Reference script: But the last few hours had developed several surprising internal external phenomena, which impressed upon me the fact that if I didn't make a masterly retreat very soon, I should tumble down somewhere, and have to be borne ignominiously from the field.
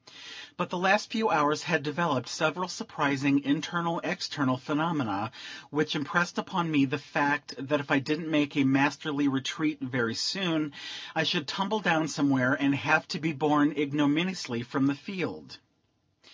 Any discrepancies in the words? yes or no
no